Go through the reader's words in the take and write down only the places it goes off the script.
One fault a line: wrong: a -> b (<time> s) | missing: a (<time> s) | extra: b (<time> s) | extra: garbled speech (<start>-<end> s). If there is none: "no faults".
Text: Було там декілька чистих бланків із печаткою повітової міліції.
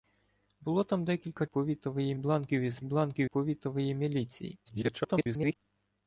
wrong: чистих -> повітової (1.4 s)
wrong: печаткою -> бланків (2.8 s)
extra: garbled speech (4.6-5.6 s)